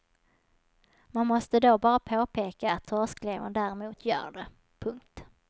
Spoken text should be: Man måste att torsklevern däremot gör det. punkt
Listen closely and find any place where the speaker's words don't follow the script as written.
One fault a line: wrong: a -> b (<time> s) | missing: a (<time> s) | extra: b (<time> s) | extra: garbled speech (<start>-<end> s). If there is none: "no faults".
extra: då bara påpeka (1.6 s)